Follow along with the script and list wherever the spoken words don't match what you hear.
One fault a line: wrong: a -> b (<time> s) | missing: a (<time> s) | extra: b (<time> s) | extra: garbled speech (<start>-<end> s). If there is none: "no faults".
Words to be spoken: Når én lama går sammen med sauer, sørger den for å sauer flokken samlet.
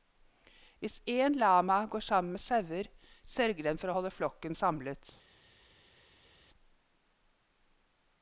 wrong: Når -> Hvis (0.8 s)
wrong: sauer -> holde (4.0 s)